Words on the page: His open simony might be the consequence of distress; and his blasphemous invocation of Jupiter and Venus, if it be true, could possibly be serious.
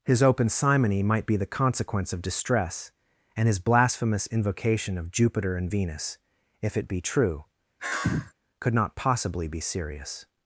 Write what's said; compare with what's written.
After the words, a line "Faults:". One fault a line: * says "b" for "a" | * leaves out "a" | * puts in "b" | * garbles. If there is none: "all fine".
His open simony might be the consequence of distress; and his blasphemous invocation of Jupiter and Venus, if it be true, could not possibly be serious.
Faults:
* puts in "not"